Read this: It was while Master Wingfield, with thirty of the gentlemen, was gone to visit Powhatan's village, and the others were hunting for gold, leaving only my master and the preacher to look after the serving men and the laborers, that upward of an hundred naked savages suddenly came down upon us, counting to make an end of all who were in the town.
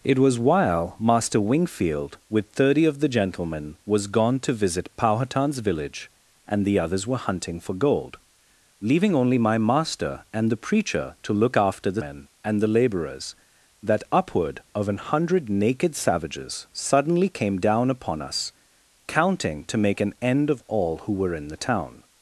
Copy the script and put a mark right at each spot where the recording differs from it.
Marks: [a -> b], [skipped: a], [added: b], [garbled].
It was while Master Wingfield, with thirty of the gentlemen, was gone to visit Powhatan's village, and the others were hunting for gold, leaving only my master and the preacher to look after the [skipped: serving] men and the laborers, that upward of an hundred naked savages suddenly came down upon us, counting to make an end of all who were in the town.